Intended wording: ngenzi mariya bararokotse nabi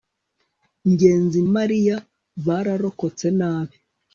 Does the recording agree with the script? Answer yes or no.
yes